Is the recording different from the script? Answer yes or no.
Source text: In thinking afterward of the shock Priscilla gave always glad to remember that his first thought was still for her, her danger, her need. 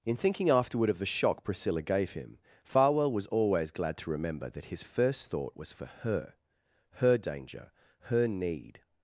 yes